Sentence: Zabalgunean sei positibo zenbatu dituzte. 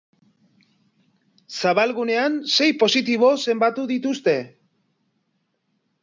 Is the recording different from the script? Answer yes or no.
no